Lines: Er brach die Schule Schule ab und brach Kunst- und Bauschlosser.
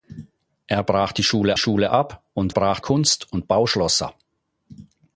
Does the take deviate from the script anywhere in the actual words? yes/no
no